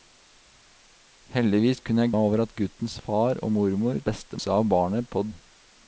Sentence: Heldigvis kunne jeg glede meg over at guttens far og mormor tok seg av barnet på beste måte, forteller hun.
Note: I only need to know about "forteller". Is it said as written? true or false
false